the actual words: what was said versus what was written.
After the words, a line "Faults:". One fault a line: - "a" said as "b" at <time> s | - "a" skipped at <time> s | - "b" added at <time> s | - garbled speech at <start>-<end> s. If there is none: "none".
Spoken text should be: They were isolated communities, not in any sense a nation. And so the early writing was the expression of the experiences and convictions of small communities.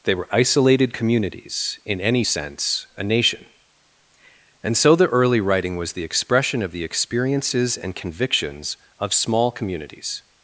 They were isolated communities, in any sense a nation. And so the early writing was the expression of the experiences and convictions of small communities.
Faults:
- "not" skipped at 1.8 s